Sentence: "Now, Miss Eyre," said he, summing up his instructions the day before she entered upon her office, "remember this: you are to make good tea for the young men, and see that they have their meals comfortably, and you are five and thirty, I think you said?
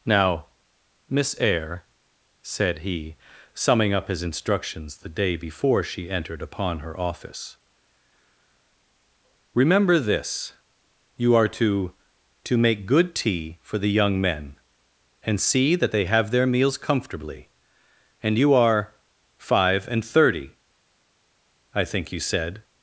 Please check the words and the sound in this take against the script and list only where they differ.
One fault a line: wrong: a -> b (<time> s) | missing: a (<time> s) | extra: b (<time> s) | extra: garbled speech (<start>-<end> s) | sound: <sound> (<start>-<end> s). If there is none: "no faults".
extra: to (12.4 s)